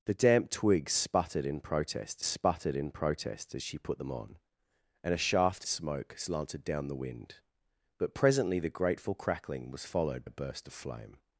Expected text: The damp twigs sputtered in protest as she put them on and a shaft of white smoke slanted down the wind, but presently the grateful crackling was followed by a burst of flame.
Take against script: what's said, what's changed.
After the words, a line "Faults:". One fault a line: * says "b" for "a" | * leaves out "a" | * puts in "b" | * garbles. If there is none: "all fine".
The damp twigs sputtered in protest sputtered in protest as she put them on and a shaft smoke slanted down the wind, but presently the grateful crackling was followed a burst of flame.
Faults:
* puts in "sputtered in protest"
* leaves out "of white"
* leaves out "by"